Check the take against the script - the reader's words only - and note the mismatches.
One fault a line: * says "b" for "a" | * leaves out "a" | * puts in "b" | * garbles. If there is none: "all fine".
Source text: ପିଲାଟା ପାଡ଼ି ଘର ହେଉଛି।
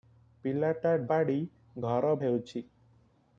all fine